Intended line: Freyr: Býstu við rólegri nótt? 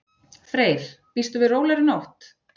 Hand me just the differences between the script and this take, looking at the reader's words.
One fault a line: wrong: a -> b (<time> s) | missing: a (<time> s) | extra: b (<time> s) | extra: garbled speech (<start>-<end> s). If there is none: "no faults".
no faults